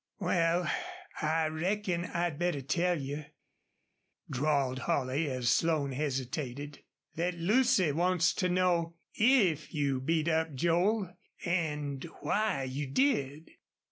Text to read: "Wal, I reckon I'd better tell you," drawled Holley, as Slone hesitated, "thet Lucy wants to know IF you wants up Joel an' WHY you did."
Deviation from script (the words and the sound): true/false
true